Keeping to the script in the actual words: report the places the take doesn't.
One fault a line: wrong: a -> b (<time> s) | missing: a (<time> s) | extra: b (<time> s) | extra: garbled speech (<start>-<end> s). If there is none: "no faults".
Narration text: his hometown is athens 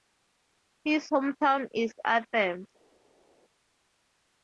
no faults